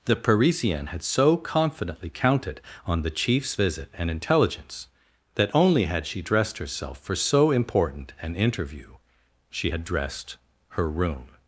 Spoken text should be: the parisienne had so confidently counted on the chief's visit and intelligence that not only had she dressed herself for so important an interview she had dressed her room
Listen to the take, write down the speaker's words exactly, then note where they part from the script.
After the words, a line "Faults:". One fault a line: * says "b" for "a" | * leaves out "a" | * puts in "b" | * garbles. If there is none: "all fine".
the parisienne had so confidently counted on the chief's visit and intelligence that only had she dressed herself for so important an interview she had dressed her room
Faults:
* leaves out "not"